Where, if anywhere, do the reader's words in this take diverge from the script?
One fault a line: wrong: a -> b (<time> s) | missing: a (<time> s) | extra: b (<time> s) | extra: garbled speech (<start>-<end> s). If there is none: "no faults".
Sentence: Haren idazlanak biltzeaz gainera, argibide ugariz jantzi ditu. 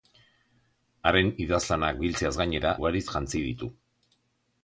missing: argibide (2.7 s)